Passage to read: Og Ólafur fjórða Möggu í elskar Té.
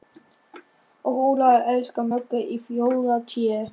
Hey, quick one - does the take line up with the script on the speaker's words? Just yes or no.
no